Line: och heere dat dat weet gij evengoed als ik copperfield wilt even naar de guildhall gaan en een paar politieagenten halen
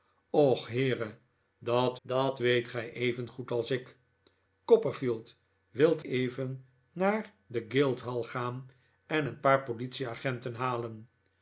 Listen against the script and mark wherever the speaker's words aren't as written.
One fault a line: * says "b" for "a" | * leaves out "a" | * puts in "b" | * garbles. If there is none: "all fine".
all fine